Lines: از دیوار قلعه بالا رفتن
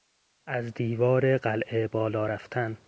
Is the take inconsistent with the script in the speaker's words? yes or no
no